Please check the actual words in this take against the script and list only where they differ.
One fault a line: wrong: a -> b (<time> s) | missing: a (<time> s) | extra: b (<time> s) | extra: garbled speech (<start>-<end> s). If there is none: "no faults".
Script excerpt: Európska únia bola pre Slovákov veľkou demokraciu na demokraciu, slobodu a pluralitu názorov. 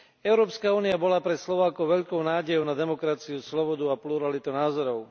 wrong: demokraciu -> nádejou (2.2 s)